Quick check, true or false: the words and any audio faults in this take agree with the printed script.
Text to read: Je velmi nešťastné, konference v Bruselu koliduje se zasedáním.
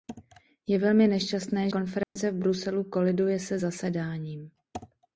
false